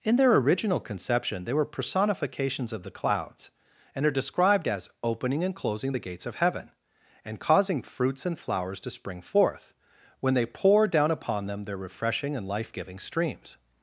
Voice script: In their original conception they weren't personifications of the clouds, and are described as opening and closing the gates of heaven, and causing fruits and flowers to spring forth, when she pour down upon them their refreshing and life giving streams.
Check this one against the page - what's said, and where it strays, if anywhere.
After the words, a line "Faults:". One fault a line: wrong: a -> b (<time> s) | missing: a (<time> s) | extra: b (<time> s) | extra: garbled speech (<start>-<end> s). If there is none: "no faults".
In their original conception they were personifications of the clouds, and are described as opening and closing the gates of heaven, and causing fruits and flowers to spring forth, when they pour down upon them their refreshing and life giving streams.
Faults:
wrong: weren't -> were (1.5 s)
wrong: she -> they (10.3 s)